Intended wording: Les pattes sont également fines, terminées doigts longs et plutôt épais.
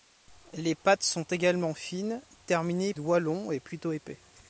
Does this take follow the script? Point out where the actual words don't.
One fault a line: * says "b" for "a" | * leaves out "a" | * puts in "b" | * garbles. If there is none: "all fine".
all fine